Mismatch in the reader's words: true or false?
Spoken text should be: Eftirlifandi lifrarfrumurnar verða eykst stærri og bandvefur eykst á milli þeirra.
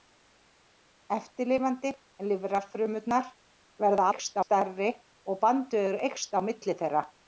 false